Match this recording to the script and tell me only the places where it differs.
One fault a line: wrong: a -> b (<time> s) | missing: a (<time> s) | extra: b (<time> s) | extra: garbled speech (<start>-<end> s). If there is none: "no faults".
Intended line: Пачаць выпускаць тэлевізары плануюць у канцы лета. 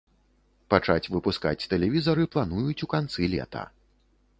no faults